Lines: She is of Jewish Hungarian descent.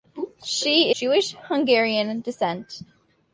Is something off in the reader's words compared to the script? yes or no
yes